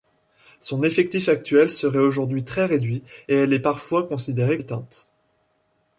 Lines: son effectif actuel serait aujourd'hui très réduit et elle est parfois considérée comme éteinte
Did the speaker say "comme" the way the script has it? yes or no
no